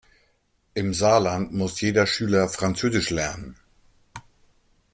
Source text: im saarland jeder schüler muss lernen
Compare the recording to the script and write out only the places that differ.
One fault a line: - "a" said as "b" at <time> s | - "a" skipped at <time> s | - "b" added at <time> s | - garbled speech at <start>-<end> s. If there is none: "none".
- "muss" added at 1.5 s
- "muss" said as "französisch" at 2.5 s